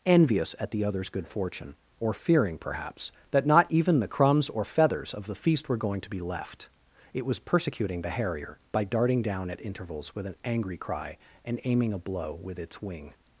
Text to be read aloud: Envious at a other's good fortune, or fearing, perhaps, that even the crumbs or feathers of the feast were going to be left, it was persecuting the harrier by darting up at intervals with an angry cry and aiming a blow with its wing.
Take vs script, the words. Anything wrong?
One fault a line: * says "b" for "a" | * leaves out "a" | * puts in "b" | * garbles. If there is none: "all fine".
* says "the" for "a"
* puts in "not"
* says "down" for "up"